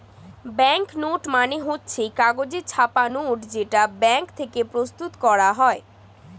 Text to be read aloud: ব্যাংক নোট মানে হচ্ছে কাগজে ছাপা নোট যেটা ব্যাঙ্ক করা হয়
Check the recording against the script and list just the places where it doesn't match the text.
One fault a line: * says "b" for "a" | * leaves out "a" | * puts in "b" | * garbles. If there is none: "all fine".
* puts in "থেকে প্রস্তুত"